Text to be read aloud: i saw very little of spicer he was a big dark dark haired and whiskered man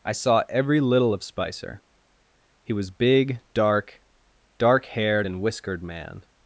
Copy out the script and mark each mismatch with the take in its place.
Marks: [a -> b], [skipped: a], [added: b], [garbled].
i saw [very -> every] little of spicer he was [skipped: a] big dark dark haired and whiskered man